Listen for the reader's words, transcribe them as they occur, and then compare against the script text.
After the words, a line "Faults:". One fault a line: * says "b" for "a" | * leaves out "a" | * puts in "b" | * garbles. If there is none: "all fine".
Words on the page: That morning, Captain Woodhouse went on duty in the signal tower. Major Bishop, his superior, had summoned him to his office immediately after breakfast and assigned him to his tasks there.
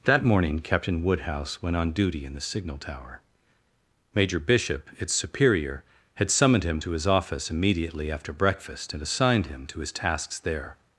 That morning, Captain Woodhouse went on duty in the signal tower. Major Bishop, its superior, had summoned him to his office immediately after breakfast and assigned him to his tasks there.
Faults:
* says "its" for "his"